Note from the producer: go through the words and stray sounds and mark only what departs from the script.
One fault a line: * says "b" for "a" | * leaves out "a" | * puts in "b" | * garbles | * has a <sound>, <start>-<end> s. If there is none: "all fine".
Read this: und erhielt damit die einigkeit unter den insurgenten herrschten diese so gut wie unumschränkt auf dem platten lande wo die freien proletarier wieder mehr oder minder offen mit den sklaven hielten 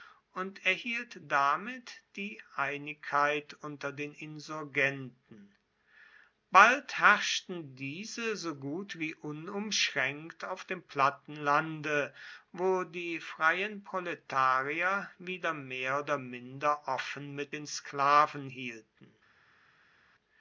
* puts in "bald"